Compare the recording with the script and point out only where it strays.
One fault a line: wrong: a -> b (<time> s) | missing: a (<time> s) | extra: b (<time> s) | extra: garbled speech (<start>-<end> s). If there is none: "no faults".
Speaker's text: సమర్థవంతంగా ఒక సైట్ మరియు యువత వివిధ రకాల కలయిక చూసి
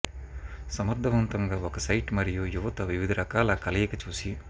no faults